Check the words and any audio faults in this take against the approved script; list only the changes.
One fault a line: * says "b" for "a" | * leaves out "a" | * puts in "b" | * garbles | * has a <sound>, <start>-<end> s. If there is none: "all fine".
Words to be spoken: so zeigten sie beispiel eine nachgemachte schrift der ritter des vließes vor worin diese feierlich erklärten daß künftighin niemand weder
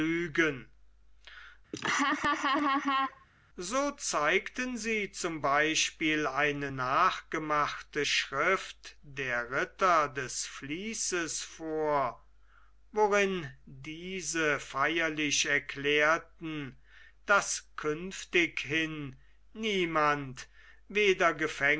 * has a laugh, 1.7-3.3 s
* puts in "zum"